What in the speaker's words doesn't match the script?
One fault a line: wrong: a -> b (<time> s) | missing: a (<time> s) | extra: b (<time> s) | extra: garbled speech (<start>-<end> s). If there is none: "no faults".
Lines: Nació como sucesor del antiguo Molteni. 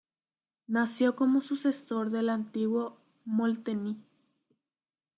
no faults